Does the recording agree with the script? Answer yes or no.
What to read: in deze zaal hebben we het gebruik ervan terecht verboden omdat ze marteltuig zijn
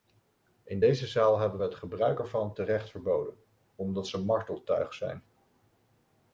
yes